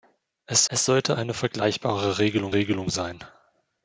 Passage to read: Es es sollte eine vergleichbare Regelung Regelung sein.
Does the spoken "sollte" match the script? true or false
true